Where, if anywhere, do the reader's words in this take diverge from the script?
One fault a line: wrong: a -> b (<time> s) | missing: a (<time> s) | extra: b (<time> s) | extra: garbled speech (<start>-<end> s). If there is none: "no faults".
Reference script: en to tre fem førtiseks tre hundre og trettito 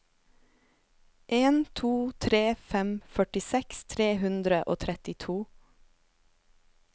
no faults